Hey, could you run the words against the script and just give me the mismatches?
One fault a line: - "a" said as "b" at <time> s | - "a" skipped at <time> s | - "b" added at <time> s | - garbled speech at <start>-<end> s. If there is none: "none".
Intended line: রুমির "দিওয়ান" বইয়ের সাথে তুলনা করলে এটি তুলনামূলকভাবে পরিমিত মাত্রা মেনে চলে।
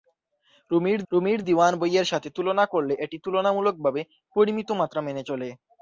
- "রুমির" added at 1.1 s